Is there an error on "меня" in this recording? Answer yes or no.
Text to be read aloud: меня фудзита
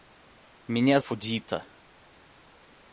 no